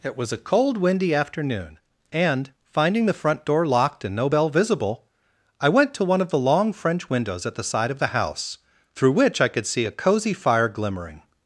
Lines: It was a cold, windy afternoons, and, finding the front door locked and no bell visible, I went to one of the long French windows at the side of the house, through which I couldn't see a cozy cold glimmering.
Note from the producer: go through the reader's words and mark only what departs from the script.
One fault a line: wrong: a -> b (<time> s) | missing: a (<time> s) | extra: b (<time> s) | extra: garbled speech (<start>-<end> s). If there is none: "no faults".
wrong: afternoons -> afternoon (1.1 s)
wrong: couldn't -> could (9.5 s)
wrong: cold -> fire (10.3 s)